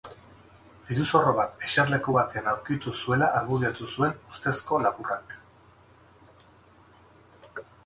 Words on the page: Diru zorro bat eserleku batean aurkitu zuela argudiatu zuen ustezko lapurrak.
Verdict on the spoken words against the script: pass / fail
pass